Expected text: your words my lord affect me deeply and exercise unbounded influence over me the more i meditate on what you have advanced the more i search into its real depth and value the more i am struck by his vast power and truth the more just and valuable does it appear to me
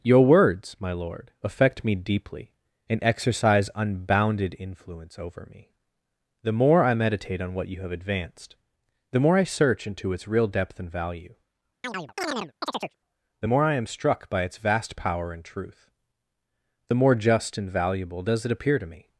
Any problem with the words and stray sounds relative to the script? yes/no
yes